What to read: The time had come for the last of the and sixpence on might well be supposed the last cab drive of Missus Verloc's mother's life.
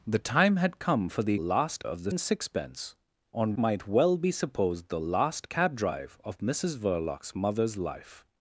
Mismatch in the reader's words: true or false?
false